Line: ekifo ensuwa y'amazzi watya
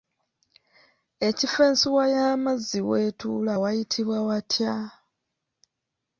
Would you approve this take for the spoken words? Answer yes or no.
no